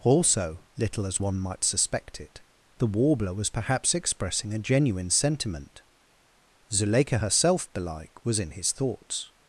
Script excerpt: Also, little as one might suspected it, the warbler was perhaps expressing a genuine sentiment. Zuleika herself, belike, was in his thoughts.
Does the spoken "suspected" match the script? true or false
false